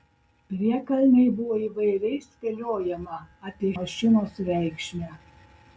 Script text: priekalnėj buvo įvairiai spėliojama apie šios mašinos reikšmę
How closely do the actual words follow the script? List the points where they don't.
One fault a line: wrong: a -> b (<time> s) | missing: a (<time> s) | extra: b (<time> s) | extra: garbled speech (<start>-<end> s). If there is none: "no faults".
missing: šios (3.7 s)